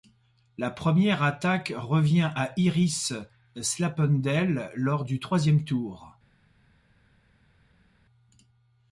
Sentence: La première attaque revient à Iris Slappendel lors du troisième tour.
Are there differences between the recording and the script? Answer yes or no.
no